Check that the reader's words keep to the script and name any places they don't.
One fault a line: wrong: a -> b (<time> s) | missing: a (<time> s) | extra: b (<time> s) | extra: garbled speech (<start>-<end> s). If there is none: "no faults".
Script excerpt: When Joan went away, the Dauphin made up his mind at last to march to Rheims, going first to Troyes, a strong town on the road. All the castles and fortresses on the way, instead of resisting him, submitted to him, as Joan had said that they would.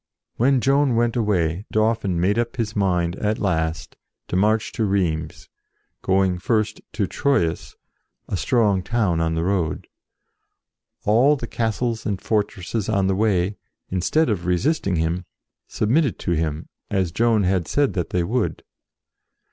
missing: the (1.7 s)